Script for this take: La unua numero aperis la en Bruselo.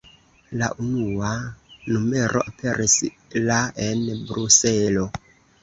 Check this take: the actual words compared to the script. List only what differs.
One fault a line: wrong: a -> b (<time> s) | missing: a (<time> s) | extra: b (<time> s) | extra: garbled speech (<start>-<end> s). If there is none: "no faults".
no faults